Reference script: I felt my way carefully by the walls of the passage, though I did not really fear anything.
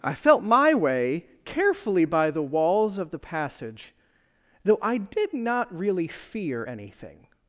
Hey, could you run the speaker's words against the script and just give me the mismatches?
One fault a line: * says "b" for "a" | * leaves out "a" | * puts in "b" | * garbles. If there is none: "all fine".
all fine